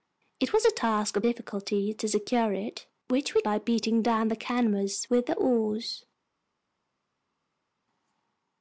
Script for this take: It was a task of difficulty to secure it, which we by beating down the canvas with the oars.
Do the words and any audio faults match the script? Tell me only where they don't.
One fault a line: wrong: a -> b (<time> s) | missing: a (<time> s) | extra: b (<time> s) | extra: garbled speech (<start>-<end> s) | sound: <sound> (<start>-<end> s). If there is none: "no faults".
no faults